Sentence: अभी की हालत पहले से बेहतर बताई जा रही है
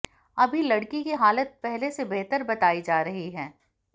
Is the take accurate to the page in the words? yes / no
no